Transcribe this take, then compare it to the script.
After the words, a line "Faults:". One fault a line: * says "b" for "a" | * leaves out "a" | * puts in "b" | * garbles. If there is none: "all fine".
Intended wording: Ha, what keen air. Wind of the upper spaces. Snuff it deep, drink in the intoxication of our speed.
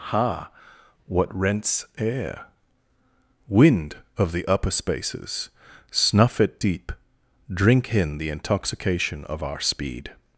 Ha, what rents air. Wind of the upper spaces. Snuff it deep, drink in the intoxication of our speed.
Faults:
* says "rents" for "keen"